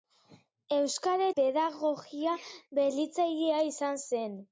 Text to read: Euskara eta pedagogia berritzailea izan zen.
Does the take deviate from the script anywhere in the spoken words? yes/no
yes